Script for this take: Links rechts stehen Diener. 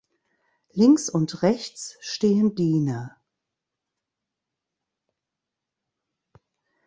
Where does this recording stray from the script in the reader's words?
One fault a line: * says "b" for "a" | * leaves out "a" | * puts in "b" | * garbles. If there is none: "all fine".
* puts in "und"